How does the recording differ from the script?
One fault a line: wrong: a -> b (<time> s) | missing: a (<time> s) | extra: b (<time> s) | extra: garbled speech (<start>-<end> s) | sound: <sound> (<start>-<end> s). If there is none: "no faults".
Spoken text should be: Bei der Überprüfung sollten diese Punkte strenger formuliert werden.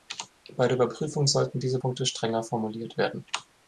no faults